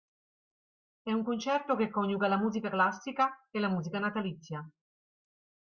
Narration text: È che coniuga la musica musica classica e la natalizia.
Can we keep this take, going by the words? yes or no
no